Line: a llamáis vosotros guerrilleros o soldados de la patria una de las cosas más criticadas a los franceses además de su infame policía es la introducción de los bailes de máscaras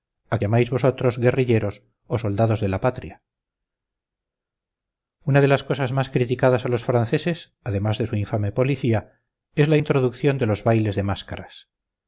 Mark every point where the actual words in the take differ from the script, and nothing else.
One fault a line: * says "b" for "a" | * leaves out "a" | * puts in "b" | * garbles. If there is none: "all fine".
all fine